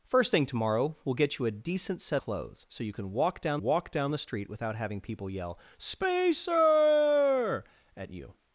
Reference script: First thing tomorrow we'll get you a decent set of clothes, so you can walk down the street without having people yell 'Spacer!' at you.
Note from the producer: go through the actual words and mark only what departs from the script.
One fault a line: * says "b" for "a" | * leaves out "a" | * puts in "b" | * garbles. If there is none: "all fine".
* leaves out "of"
* puts in "walk down"